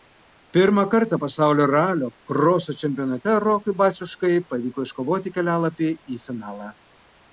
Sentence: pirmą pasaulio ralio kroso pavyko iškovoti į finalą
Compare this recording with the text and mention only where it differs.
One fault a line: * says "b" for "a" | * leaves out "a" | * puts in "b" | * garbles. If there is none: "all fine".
* puts in "kartą"
* puts in "čempionate rokui baciuškai"
* puts in "kelialapį"